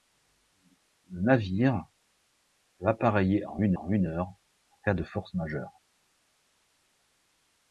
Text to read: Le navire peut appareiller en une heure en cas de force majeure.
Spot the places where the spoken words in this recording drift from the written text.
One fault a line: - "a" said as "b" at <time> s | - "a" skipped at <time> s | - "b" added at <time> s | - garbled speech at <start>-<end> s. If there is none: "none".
- "en une" added at 3.7 s